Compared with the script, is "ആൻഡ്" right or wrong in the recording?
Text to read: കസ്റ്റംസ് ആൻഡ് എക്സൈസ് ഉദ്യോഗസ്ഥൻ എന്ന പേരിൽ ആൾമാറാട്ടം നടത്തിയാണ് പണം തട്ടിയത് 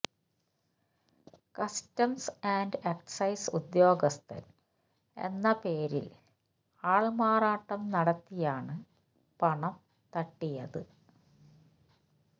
right